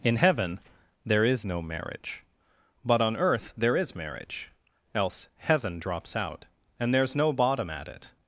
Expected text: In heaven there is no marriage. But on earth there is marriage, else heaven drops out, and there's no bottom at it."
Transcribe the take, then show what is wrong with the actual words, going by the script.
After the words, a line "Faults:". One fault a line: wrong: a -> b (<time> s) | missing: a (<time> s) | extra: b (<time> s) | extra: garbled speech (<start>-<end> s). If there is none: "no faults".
In heaven there is no marriage. But on earth there is marriage, else heaven drops out, and there's no bottom at it."
Faults:
no faults